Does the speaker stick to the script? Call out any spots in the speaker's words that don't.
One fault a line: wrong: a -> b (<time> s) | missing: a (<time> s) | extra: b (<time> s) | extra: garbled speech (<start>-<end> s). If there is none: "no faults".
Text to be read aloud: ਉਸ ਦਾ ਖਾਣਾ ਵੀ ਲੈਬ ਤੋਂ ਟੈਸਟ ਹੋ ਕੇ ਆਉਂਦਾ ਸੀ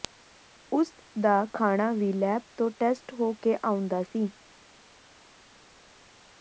no faults